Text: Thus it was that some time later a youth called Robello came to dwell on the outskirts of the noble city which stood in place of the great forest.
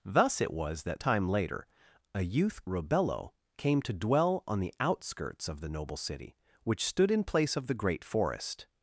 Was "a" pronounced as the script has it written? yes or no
yes